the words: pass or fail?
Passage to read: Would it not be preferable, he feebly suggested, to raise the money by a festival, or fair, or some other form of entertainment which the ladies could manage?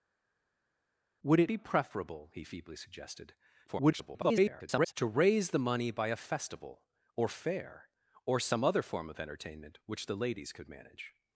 fail